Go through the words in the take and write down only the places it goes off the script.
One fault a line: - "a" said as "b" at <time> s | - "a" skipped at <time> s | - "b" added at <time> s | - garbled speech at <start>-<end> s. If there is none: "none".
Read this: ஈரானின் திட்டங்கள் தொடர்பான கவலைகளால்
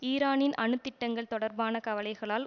- "அணு" added at 0.6 s